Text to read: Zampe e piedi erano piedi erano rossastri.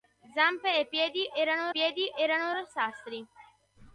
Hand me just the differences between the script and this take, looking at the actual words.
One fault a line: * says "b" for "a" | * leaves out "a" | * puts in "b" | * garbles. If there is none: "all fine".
all fine